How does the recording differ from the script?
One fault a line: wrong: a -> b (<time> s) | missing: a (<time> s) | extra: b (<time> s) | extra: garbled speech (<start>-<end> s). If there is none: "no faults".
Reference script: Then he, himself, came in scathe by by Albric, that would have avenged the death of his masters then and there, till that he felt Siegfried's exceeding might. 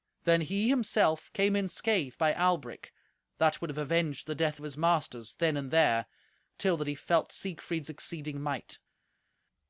missing: by (2.3 s)